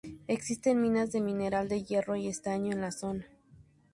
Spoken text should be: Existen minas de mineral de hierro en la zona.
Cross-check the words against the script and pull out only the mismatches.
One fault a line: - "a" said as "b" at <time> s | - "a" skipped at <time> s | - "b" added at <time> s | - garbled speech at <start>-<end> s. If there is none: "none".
- "y estaño" added at 2.1 s